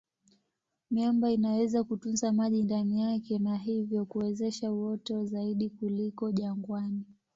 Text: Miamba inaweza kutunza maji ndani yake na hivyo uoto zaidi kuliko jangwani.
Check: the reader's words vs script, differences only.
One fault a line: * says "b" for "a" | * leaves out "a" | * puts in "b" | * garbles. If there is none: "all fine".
* puts in "kuwezesha"